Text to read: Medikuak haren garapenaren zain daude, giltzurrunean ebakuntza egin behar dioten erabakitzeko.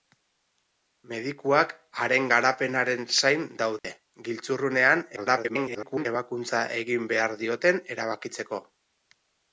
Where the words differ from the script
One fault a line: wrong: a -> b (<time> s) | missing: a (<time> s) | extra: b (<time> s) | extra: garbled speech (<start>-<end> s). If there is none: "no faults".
extra: garbled speech (5.2-6.1 s)